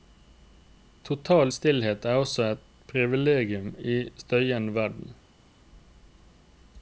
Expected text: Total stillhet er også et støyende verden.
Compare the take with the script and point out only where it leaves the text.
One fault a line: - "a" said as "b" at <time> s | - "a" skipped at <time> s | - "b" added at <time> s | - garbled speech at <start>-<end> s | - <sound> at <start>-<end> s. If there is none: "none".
- "privilegium i en" added at 2.9 s